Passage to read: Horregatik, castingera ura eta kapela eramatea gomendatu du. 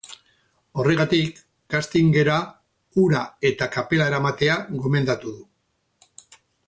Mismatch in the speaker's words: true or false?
false